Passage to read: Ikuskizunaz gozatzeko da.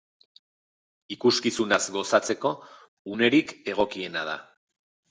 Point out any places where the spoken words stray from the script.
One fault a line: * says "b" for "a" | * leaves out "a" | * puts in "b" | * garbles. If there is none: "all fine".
* puts in "unerik egokiena"